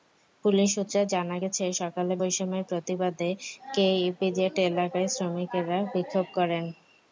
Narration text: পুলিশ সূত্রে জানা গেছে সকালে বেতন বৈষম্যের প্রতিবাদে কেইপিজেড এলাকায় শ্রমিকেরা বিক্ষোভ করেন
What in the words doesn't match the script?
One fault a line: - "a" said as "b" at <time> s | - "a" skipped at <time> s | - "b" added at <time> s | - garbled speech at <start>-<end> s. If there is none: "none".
- "বেতন" skipped at 2.1 s